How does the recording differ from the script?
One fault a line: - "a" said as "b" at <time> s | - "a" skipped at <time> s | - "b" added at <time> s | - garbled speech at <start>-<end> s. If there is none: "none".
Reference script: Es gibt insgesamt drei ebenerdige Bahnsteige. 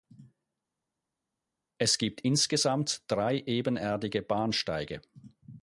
none